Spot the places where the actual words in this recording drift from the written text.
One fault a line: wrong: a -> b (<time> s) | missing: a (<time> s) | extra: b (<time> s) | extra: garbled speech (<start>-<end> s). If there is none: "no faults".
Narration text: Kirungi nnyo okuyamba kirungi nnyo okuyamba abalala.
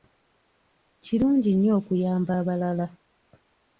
missing: kirungi nnyo okuyamba (2.3 s)